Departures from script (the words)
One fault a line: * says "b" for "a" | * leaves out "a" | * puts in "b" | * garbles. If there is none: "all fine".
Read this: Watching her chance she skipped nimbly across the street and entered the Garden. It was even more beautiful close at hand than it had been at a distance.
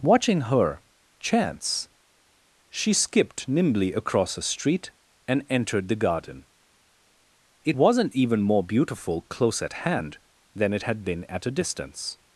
* says "a" for "the"
* says "wasn't" for "was"